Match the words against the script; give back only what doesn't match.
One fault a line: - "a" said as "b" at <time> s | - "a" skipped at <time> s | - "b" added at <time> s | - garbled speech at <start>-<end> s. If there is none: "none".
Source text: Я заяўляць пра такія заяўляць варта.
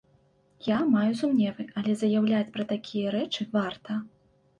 - "маю сумневы але" added at 0.9 s
- "заяўляць" said as "рэчы" at 3.2 s